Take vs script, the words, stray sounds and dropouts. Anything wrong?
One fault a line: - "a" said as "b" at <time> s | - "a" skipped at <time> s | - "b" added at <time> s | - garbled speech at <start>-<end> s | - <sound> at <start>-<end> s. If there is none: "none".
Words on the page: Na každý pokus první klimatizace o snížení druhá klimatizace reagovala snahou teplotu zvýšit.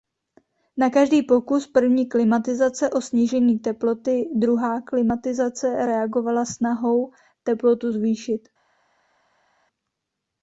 - "teploty" added at 3.6 s